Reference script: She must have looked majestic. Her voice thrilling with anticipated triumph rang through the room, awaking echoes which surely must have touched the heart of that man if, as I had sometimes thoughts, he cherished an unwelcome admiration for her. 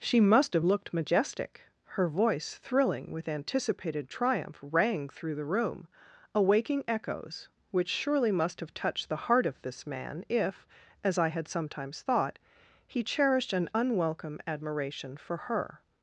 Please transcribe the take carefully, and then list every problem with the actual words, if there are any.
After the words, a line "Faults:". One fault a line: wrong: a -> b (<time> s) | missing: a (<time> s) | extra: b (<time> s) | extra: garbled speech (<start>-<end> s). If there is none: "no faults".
She must have looked majestic. Her voice thrilling with anticipated triumph rang through the room, awaking echoes which surely must have touched the heart of this man if, as I had sometimes thought, he cherished an unwelcome admiration for her.
Faults:
wrong: that -> this (9.6 s)
wrong: thoughts -> thought (12.0 s)